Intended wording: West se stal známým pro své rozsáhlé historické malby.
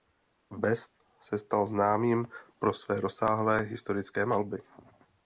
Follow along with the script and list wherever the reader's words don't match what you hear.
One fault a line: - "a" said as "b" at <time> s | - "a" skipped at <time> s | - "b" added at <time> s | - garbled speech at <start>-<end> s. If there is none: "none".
none